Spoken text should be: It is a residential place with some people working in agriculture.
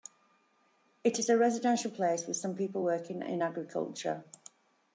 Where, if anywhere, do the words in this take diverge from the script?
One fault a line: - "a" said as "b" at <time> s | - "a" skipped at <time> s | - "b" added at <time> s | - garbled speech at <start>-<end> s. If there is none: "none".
none